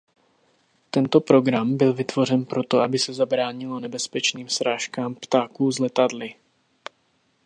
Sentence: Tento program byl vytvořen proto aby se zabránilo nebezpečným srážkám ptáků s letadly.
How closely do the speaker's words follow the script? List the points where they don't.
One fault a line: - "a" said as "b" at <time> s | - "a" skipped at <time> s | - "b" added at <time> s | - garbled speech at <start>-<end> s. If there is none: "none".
none